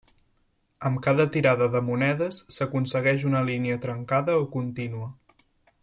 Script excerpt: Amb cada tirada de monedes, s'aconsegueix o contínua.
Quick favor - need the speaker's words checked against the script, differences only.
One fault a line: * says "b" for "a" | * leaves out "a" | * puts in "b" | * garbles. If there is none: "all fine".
* puts in "una línia trencada"